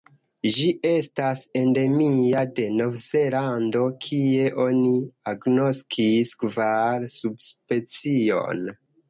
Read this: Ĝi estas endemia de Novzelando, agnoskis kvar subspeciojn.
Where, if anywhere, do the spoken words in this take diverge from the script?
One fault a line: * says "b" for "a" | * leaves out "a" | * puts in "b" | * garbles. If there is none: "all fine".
* puts in "kie oni"